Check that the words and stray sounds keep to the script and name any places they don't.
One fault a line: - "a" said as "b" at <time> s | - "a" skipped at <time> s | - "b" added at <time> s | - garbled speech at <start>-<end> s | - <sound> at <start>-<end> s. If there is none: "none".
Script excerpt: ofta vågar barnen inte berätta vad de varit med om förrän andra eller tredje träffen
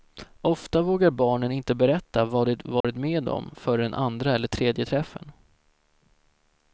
- dropout at 2.8-2.8 s